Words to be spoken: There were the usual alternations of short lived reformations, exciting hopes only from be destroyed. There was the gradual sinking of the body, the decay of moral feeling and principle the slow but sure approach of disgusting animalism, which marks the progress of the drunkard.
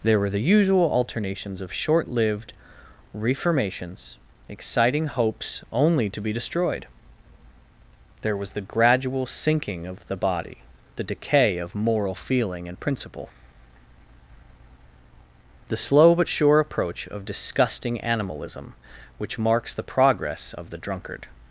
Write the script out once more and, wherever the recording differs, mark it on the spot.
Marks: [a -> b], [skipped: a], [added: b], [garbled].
There were the usual alternations of short lived reformations, exciting hopes only [from -> to] be destroyed. There was the gradual sinking of the body, the decay of moral feeling and principle the slow but sure approach of disgusting animalism, which marks the progress of the drunkard.